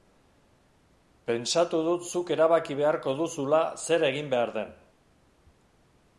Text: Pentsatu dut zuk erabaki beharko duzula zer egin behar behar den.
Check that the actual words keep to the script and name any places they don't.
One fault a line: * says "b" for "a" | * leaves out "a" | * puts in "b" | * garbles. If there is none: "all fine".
* leaves out "behar"